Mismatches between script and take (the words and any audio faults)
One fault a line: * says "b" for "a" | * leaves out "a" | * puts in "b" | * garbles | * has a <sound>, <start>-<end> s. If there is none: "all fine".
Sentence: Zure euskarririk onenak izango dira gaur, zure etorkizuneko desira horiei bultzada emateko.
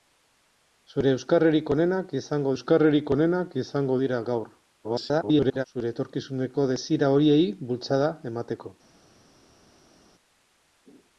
* puts in "euskarririk onenak izango"
* garbles